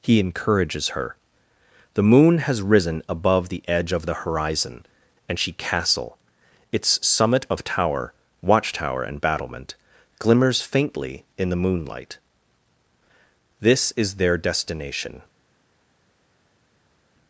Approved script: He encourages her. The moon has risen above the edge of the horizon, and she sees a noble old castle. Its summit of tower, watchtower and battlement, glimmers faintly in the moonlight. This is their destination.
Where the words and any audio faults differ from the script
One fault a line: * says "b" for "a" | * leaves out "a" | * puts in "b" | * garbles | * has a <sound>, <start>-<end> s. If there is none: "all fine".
* leaves out "sees a noble old"